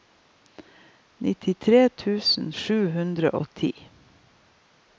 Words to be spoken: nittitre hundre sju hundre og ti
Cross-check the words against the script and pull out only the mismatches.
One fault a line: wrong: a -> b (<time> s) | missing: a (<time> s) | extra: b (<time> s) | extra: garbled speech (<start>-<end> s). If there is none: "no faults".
wrong: hundre -> tusen (2.0 s)